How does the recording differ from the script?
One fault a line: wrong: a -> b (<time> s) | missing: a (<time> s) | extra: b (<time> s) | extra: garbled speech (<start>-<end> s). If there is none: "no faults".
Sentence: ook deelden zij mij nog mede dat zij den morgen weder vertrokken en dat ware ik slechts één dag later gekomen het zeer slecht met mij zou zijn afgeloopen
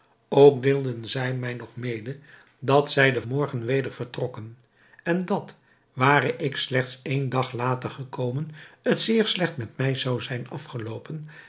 no faults